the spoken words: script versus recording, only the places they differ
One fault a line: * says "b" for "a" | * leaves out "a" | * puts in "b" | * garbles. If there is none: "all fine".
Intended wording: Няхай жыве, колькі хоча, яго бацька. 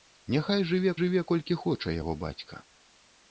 * puts in "жыве"